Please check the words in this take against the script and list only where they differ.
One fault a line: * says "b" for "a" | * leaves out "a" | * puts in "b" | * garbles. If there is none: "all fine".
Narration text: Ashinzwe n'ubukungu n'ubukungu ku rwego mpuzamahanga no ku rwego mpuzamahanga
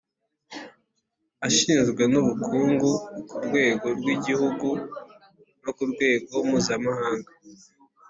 * leaves out "n'ubukungu"
* says "rw'igihugu" for "mpuzamahanga"